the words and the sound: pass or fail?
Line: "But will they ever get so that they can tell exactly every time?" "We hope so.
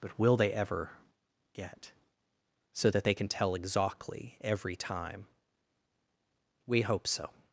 pass